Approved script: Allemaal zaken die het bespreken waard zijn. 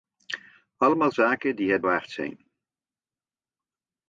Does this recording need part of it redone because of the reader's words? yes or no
yes